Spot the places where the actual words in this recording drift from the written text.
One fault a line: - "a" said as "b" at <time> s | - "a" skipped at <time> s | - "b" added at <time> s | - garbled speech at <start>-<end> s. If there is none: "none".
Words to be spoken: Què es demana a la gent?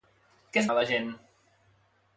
- "demana" skipped at 0.7 s